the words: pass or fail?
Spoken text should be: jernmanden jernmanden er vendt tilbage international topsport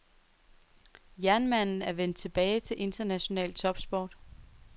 fail